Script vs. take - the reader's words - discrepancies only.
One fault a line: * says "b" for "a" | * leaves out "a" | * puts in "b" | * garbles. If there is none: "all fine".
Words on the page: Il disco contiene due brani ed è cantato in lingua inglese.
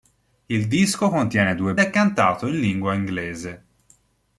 * leaves out "brani ed"